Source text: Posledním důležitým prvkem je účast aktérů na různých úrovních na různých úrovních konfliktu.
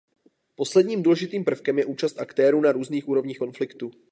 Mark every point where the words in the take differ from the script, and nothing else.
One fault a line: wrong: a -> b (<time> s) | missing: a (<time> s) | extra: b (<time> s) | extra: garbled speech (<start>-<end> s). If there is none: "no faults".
missing: na různých úrovních (3.4 s)